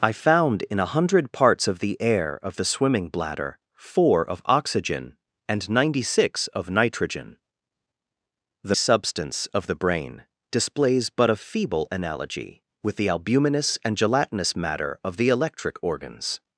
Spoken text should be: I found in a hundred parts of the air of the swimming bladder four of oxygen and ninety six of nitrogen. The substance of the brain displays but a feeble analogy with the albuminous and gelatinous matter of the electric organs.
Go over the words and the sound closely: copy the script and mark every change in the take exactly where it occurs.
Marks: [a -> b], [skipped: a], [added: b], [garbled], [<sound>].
I found in a hundred parts of the air of the swimming bladder four of oxygen and ninety six of nitrogen. The substance of the brain displays but a feeble analogy with the albuminous and gelatinous matter of the electric organs.